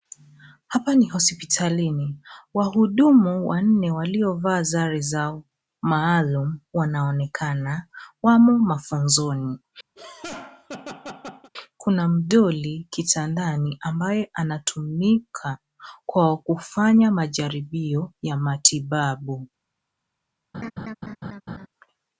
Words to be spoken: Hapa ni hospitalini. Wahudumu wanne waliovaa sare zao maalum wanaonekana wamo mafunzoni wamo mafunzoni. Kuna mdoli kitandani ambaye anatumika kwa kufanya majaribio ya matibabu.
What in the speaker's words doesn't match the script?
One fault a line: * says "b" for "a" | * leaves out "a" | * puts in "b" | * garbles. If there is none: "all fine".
* leaves out "wamo mafunzoni"